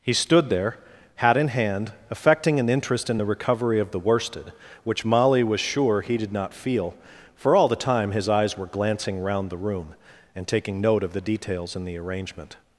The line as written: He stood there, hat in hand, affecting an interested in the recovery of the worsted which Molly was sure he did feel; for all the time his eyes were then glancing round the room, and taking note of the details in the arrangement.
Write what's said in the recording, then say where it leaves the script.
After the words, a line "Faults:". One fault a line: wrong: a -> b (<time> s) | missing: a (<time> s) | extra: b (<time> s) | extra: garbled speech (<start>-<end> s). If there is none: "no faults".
He stood there, hat in hand, affecting an interest in the recovery of the worsted which Molly was sure he did not feel; for all the time his eyes were glancing round the room, and taking note of the details in the arrangement.
Faults:
wrong: interested -> interest (2.7 s)
extra: not (6.3 s)
missing: then (8.7 s)